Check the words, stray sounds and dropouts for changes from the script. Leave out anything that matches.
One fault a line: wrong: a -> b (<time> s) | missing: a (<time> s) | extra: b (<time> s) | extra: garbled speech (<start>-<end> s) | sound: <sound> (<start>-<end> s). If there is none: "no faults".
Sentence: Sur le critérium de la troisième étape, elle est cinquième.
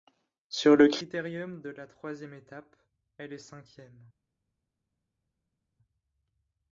no faults